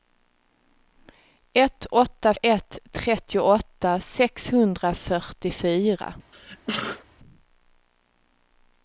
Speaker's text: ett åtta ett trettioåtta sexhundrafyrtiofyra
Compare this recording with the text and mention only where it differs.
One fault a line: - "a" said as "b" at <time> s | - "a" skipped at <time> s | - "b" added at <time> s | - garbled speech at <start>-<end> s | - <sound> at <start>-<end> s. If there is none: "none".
- sneeze at 6.3-7.0 s